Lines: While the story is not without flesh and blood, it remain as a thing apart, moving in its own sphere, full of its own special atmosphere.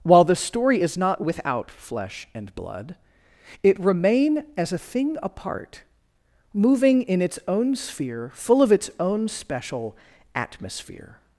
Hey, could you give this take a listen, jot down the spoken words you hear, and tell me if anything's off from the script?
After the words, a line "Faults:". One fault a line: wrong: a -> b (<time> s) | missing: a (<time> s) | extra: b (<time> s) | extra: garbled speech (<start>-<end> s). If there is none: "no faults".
While the story is not without flesh and blood, it remain as a thing apart, moving in its own sphere, full of its own special atmosphere.
Faults:
no faults